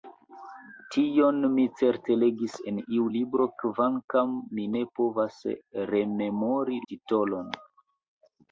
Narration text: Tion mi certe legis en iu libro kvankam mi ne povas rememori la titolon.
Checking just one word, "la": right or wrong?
wrong